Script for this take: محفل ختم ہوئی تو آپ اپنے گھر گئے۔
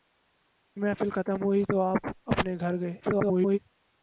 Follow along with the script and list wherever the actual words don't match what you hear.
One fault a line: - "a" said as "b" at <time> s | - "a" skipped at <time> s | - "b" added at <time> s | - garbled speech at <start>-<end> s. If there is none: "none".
- garbled speech at 3.0-3.6 s